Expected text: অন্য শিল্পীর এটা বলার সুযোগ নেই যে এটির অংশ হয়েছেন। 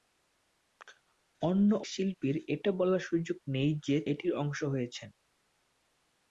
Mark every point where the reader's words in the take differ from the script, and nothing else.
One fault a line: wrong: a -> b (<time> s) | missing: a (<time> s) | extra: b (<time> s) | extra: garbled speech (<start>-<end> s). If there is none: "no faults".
no faults